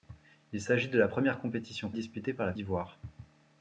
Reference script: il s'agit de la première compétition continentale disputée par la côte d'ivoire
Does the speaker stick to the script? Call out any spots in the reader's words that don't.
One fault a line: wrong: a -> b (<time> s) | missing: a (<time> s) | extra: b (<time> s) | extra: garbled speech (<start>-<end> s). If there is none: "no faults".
missing: continentale (1.9 s)
missing: côte (2.5 s)